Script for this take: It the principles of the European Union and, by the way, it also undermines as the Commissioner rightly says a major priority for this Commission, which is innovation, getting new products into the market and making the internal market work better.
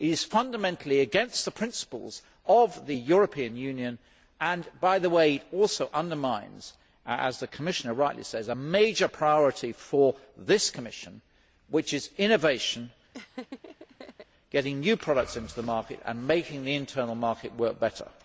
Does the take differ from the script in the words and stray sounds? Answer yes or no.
yes